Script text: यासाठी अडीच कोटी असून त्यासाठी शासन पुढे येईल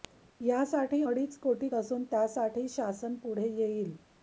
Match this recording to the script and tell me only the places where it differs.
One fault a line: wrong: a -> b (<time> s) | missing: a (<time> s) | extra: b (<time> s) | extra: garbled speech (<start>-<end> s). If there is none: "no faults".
no faults